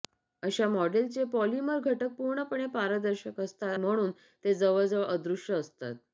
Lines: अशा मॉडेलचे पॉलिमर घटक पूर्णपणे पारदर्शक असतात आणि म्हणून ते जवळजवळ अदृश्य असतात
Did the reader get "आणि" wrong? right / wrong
wrong